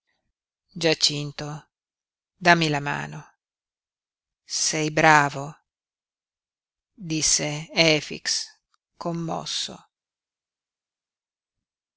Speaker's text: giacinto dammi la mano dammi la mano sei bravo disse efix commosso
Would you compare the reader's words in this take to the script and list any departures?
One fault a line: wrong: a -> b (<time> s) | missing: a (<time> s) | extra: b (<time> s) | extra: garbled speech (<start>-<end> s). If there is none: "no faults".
missing: dammi la mano (3.3 s)